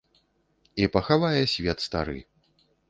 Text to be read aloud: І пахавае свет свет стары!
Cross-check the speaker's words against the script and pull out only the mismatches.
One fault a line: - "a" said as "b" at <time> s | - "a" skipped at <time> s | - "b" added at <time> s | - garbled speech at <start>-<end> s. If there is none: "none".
- "свет" skipped at 1.9 s